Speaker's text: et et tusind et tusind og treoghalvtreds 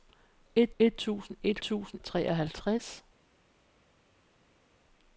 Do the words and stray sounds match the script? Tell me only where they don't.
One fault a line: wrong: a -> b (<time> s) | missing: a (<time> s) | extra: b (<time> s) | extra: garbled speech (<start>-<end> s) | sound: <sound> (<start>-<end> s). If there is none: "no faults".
no faults